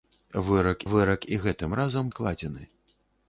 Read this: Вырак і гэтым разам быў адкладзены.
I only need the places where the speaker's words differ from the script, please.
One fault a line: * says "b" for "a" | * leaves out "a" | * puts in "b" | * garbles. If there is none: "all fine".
* puts in "вырак"
* leaves out "быў"